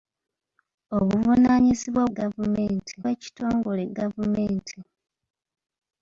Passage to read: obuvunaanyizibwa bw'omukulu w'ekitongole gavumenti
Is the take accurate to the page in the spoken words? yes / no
no